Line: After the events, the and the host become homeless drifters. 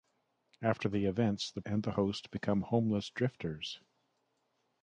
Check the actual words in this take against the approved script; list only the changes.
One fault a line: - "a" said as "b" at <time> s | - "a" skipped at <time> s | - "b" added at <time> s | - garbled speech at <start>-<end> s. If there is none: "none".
none